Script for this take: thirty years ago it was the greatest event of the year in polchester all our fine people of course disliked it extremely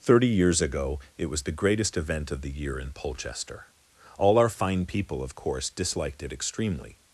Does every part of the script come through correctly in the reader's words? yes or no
yes